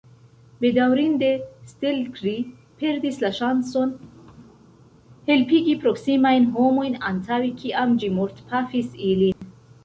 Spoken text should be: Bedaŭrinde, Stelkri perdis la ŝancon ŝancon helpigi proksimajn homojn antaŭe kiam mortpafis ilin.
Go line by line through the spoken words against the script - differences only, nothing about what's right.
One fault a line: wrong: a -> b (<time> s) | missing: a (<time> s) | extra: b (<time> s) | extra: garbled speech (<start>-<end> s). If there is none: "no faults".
missing: ŝancon (4.0 s)
extra: ĝi (8.0 s)